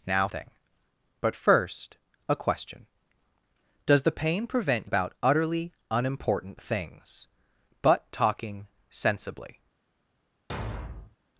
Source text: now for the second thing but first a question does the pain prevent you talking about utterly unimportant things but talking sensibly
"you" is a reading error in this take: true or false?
true